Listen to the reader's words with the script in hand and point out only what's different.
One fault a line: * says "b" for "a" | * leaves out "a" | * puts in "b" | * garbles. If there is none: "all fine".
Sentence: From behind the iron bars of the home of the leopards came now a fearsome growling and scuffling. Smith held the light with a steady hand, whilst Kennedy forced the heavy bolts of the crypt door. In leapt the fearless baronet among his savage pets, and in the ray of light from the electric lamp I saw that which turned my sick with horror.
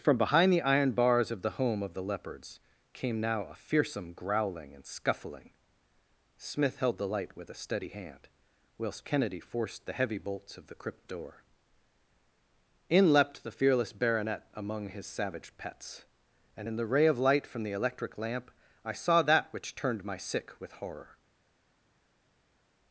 all fine